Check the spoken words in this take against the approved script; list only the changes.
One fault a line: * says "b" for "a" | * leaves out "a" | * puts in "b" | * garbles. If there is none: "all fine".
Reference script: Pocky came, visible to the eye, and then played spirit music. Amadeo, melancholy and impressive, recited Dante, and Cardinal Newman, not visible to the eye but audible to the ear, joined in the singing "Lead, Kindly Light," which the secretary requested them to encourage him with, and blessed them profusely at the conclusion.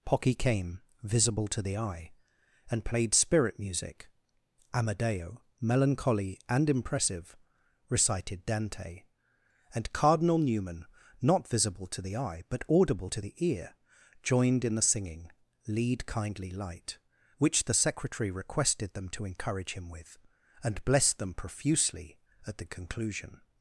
* leaves out "then"